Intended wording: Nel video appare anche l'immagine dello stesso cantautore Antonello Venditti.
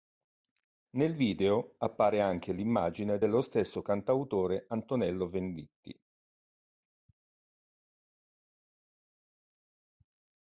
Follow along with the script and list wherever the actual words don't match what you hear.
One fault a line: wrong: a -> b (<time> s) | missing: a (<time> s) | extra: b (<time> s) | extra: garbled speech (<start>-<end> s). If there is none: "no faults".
no faults